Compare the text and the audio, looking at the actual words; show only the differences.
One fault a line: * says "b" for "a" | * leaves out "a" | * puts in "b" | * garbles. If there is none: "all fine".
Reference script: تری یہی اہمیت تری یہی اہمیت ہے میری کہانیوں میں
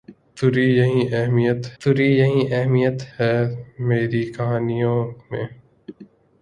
all fine